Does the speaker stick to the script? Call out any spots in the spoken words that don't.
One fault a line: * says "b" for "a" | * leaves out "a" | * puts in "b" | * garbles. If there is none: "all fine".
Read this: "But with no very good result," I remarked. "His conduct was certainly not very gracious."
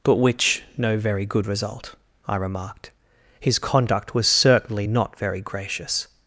* says "which" for "with"